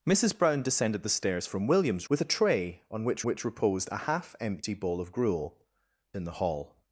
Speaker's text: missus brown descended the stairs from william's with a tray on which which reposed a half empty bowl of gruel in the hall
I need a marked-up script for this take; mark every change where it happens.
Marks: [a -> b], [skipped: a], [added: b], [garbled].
missus brown descended the stairs from william's with a tray on which which reposed a half empty bowl of gruel in the hall